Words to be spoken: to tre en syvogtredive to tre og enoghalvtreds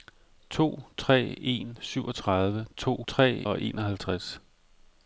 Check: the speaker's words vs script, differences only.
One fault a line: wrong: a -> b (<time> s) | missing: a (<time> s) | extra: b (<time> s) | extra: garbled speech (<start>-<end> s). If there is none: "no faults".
no faults